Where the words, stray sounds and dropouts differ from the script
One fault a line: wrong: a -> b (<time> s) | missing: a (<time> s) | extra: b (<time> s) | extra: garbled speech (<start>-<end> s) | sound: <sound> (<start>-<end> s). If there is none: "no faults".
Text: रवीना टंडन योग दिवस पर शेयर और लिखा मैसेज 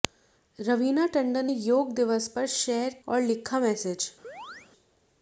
sound: chirp (4.2-4.7 s)